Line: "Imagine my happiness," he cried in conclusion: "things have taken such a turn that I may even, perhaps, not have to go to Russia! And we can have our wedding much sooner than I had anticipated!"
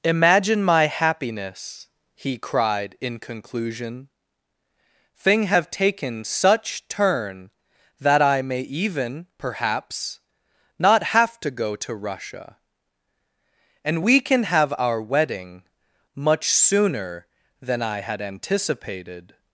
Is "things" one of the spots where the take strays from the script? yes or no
yes